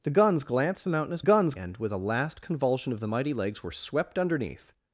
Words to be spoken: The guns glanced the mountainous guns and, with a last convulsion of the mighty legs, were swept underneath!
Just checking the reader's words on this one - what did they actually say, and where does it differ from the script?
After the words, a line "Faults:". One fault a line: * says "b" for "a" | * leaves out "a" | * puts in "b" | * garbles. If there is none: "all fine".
The guns glanced the mountainous guns and, with a last convulsion of the mighty legs, were swept underneath!
Faults:
all fine